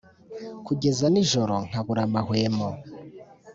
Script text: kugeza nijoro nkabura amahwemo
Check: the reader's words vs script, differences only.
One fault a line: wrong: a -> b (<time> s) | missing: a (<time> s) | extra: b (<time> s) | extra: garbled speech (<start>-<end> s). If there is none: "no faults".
no faults